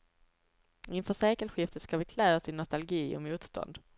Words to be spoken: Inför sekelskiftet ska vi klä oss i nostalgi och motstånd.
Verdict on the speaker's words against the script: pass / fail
pass